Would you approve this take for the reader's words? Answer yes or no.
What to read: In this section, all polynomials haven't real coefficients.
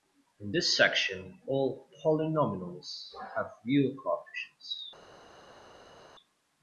no